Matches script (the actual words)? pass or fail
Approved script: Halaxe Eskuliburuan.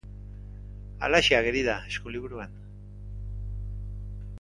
fail